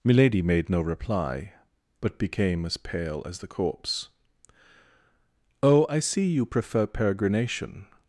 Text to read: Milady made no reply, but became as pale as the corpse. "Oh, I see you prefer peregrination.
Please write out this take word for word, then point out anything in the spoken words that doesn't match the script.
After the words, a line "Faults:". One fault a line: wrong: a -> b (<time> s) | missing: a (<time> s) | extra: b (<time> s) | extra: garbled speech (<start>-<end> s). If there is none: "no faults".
Milady made no reply, but became as pale as the corpse. "Oh, I see you prefer peregrination.
Faults:
no faults